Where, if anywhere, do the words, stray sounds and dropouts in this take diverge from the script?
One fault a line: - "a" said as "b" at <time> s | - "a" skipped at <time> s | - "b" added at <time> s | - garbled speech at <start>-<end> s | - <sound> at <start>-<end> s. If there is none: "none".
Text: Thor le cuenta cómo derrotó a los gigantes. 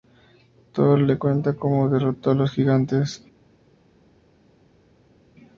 none